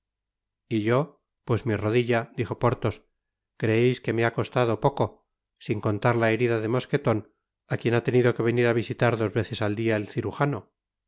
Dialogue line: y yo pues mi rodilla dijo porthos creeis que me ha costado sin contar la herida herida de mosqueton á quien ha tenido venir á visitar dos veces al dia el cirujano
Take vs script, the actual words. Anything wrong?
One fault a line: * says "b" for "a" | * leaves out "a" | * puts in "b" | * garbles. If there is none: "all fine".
* puts in "poco"
* leaves out "herida"
* puts in "que"